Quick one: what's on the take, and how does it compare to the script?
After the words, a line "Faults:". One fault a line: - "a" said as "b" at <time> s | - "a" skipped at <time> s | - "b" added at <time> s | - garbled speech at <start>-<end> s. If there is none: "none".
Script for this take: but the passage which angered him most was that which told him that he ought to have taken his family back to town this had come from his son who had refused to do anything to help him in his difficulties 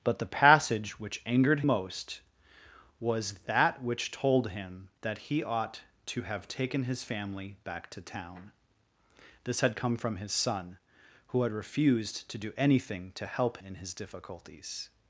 but the passage which angered most was that which told him that he ought to have taken his family back to town this had come from his son who had refused to do anything to help in his difficulties
Faults:
- "him" skipped at 1.6 s
- "him" skipped at 13.6 s